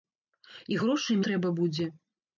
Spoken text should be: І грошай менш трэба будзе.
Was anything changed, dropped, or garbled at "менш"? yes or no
yes